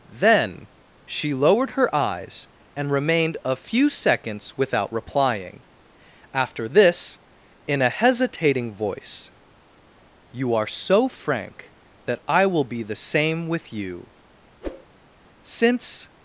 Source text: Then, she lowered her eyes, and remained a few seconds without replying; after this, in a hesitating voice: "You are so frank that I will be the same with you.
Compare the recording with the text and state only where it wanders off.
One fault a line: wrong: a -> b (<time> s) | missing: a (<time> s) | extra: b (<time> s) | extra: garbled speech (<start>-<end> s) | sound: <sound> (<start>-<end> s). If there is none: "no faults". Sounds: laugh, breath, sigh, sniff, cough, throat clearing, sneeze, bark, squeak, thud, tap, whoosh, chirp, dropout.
sound: whoosh (14.6-14.9 s)
extra: Since (15.4 s)